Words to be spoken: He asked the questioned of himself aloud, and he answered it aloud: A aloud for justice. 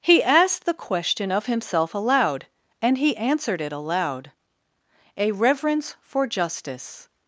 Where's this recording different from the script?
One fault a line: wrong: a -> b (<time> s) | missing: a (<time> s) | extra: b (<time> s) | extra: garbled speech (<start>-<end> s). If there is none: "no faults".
wrong: questioned -> question (0.7 s)
wrong: aloud -> reverence (5.3 s)